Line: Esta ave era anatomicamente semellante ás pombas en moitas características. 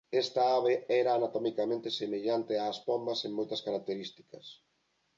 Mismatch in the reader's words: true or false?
false